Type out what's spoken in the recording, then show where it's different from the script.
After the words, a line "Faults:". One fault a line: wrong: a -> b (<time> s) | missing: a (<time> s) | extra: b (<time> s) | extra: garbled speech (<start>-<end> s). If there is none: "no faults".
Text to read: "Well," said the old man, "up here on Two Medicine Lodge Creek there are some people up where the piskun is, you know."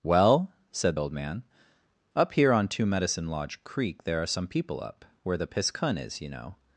"Well," said old man, "up here on Two Medicine Lodge Creek there are some people up where the piskun is, you know."
Faults:
missing: the (1.0 s)